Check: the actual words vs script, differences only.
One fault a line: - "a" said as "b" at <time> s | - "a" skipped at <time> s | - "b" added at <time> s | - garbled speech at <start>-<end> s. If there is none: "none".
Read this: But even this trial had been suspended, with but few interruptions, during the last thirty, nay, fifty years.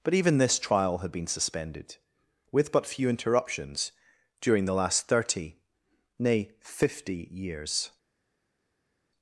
none